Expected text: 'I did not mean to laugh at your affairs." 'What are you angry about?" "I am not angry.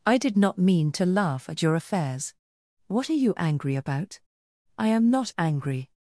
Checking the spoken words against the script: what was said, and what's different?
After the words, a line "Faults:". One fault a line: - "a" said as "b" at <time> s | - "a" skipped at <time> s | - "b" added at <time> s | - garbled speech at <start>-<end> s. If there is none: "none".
'I did not mean to laugh at your affairs." 'What are you angry about?" "I am not angry.
Faults:
none